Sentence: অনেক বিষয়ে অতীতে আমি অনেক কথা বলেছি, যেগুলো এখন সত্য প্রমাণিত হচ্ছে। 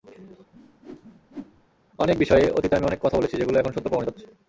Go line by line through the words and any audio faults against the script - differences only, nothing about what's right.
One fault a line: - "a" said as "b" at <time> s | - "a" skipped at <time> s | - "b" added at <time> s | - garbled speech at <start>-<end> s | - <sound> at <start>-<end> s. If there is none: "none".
- whoosh at 0.5-1.7 s